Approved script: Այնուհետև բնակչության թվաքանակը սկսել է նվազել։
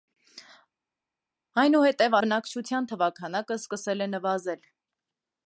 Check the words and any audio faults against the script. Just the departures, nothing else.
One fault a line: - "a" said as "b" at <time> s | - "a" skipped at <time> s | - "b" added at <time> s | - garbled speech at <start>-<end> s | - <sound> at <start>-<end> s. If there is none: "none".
none